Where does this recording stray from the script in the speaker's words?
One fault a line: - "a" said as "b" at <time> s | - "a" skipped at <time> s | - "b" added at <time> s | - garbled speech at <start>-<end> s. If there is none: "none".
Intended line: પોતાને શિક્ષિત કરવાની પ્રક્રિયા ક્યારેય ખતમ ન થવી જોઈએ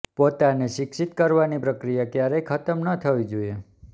none